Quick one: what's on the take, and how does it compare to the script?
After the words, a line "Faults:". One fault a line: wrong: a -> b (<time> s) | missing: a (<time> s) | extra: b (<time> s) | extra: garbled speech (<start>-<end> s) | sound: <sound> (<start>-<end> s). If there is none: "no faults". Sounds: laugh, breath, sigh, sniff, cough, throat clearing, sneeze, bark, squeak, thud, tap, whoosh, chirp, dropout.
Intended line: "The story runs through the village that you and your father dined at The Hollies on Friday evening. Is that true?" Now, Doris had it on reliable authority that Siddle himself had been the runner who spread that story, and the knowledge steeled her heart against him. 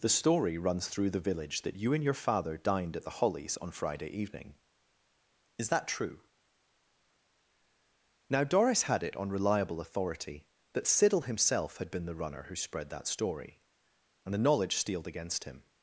"The story runs through the village that you and your father dined at The Hollies on Friday evening. Is that true?" Now, Doris had it on reliable authority that Siddle himself had been the runner who spread that story, and the knowledge steeled against him.
Faults:
missing: her heart (15.1 s)